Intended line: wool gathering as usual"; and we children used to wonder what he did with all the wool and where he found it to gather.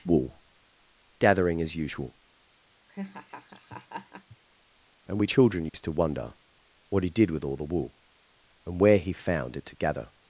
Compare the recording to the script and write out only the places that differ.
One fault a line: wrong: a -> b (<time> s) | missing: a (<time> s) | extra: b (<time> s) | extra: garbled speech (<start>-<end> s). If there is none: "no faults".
no faults